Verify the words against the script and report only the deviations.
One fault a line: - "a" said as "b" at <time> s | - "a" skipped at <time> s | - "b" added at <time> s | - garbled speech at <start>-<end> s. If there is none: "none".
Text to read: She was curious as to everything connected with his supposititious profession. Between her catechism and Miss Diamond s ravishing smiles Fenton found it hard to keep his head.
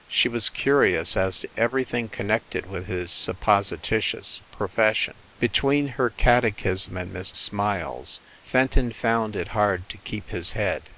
- "Diamond s ravishing" skipped at 7.3 s